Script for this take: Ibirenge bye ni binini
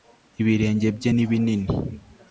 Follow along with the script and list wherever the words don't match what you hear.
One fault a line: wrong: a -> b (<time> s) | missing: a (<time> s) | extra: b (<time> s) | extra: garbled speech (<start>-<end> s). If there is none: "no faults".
no faults